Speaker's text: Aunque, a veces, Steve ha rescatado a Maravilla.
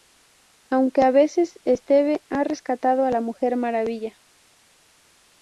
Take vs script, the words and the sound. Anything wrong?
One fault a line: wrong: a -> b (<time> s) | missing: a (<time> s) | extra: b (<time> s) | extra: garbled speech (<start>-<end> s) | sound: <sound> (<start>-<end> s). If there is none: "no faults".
extra: la Mujer (3.1 s)